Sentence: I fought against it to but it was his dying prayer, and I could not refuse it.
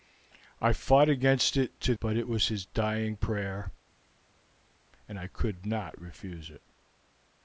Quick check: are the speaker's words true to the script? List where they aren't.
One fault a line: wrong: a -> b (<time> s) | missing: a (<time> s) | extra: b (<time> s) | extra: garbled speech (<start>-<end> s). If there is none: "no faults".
no faults